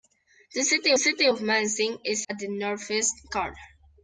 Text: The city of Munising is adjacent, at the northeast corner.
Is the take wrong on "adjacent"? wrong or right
wrong